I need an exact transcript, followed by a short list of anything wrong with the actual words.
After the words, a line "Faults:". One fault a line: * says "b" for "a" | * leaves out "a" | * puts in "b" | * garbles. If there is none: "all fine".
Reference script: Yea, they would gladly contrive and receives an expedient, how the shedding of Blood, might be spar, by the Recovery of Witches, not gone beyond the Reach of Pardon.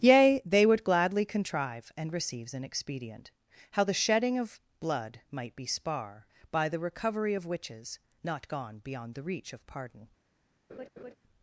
Yea, they would gladly contrive and receives an expedient, how the shedding of Blood, might be spar, by the Recovery of Witches, not gone beyond the Reach of Pardon.
Faults:
all fine